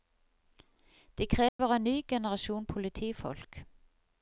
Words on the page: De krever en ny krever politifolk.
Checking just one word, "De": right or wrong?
right